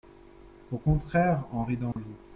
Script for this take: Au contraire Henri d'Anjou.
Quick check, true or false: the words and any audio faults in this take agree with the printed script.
false